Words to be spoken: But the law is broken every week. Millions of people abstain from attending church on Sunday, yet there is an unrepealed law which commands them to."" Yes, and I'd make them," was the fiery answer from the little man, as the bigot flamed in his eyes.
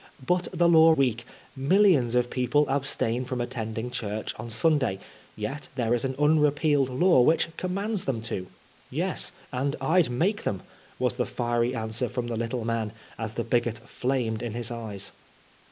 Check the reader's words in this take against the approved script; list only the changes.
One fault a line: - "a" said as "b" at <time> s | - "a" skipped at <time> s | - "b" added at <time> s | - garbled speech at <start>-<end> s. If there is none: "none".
- "is broken every" skipped at 1.0 s